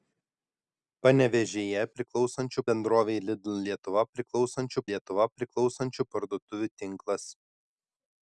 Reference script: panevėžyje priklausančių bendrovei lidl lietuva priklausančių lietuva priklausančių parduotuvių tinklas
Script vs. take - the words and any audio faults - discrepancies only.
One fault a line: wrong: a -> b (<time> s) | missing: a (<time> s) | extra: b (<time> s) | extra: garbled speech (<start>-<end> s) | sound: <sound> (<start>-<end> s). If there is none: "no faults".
no faults